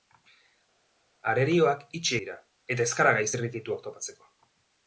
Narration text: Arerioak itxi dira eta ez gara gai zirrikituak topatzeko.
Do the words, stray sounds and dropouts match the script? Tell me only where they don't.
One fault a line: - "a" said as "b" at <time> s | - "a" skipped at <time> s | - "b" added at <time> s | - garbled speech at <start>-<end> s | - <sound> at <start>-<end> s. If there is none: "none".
none